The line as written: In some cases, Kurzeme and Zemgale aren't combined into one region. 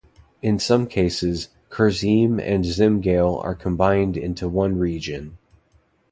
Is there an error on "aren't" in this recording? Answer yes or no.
yes